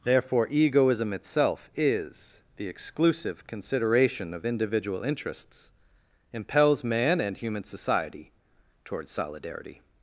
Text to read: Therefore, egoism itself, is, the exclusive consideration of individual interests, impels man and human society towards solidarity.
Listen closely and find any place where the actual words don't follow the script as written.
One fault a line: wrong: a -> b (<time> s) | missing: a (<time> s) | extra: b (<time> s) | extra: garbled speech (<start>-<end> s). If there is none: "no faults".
no faults